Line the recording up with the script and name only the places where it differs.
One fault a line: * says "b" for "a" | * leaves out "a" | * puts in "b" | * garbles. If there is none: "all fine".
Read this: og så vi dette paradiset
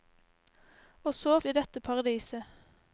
all fine